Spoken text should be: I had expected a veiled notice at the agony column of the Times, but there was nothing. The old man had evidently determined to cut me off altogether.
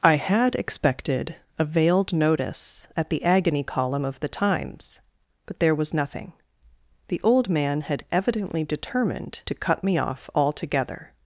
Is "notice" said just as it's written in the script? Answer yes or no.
yes